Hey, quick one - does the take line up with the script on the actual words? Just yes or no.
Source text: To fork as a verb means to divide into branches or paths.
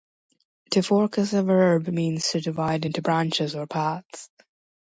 yes